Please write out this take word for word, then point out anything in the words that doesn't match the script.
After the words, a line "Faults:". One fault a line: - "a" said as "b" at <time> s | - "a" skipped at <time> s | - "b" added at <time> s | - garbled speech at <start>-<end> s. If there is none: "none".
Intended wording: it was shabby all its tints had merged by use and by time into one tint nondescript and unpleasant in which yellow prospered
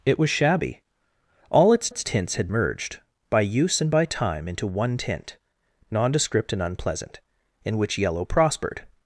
it was shabby all its its tints had merged by use and by time into one tint nondescript and unpleasant in which yellow prospered
Faults:
- "its" added at 1.9 s